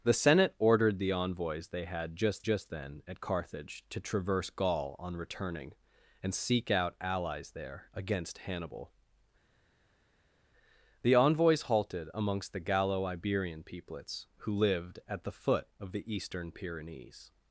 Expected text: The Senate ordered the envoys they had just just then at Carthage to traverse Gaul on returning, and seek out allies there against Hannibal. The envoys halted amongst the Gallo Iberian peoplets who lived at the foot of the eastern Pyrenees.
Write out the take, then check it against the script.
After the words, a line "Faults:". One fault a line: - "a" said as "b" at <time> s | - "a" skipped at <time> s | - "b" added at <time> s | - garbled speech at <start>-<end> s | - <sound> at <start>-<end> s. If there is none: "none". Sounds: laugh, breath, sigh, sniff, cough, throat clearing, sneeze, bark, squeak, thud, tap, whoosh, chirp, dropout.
The Senate ordered the envoys they had just just then at Carthage to traverse Gaul on returning, and seek out allies there against Hannibal. The envoys halted amongst the Gallo Iberian peoplets who lived at the foot of the eastern Pyrenees.
Faults:
none